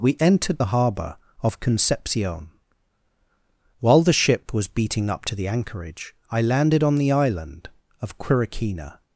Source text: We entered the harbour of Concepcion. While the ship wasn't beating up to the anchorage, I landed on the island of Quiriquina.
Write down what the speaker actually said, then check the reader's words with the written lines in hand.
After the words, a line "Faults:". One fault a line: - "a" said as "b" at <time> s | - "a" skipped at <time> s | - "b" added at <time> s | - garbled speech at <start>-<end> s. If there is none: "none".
We entered the harbour of Concepcion. While the ship was beating up to the anchorage, I landed on the island of Quiriquina.
Faults:
- "wasn't" said as "was" at 4.5 s